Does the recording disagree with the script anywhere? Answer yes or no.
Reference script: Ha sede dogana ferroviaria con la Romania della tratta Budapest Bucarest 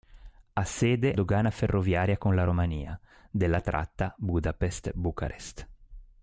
no